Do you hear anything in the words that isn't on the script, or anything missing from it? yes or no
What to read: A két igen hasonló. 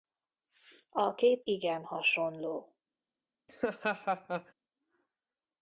no